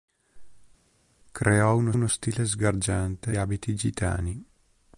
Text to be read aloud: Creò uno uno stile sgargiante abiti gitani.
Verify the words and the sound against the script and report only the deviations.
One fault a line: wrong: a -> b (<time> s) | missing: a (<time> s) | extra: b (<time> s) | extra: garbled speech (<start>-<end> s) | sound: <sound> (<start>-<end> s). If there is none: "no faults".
no faults